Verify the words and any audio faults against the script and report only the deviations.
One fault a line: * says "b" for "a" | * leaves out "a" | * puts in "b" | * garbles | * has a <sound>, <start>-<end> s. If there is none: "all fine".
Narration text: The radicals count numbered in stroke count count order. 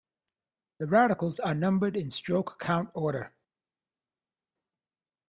* says "are" for "count"
* leaves out "count"